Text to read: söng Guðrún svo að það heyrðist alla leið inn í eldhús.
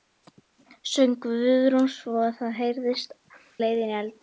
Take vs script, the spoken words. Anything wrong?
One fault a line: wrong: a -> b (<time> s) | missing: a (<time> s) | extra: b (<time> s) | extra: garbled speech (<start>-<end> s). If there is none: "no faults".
missing: alla (3.1 s)